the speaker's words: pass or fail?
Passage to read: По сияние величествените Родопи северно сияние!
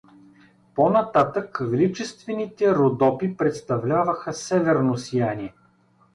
fail